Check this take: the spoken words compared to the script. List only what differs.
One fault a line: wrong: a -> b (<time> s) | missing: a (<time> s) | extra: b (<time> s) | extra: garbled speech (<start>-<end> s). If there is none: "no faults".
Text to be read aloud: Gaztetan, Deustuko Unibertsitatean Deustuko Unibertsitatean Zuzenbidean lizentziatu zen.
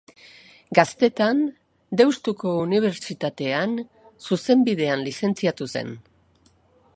missing: Deustuko Unibertsitatean (3.8 s)